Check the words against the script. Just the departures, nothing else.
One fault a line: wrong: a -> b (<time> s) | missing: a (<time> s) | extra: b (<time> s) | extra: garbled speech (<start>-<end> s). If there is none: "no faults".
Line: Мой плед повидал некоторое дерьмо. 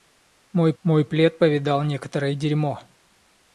extra: мой (0.8 s)